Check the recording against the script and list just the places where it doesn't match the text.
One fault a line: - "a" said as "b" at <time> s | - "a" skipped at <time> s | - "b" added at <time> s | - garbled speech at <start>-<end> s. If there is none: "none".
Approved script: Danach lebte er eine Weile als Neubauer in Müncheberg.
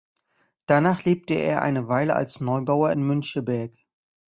none